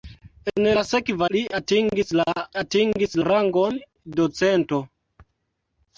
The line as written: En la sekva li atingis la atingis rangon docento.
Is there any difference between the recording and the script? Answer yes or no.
no